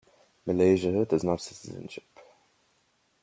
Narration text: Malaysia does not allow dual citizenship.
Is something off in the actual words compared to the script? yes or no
yes